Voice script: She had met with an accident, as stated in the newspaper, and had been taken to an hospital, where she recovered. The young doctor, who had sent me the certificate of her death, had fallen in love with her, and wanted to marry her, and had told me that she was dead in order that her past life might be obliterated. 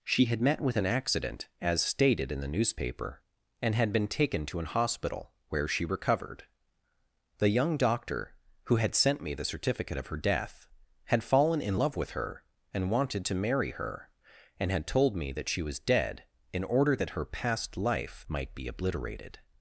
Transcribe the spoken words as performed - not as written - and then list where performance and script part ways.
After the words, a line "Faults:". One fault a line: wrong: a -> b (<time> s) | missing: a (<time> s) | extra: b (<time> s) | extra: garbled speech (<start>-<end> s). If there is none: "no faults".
She had met with an accident, as stated in the newspaper, and had been taken to an hospital, where she recovered. The young doctor, who had sent me the certificate of her death, had fallen in love with her, and wanted to marry her, and had told me that she was dead in order that her past life might be obliterated.
Faults:
no faults